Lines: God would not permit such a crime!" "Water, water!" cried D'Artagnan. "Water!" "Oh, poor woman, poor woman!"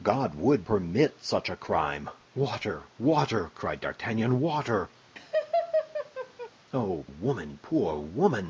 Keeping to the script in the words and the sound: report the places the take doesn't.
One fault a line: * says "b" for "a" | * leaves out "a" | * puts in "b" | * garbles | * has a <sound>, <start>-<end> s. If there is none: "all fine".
* leaves out "not"
* has a laugh, 5.2-6.5 s
* leaves out "poor"